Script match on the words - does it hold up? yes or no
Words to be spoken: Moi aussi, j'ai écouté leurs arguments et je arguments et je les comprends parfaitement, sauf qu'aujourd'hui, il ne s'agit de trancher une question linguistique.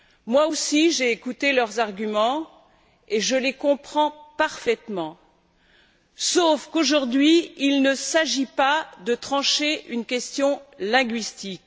no